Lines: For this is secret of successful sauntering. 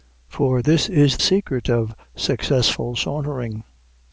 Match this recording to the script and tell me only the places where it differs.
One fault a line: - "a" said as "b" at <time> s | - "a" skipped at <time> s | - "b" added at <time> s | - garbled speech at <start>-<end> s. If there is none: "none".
none